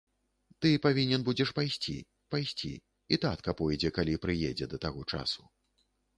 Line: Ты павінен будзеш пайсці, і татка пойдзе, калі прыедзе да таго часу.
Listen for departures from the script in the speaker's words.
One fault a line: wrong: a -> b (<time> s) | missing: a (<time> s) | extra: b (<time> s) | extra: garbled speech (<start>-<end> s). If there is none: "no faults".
extra: пайсці (2.3 s)